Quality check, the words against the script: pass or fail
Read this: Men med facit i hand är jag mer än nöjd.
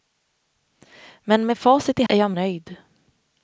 fail